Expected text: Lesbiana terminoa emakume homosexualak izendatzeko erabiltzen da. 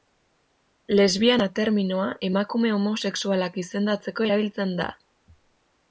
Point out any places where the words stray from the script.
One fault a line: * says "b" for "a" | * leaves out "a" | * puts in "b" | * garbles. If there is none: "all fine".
all fine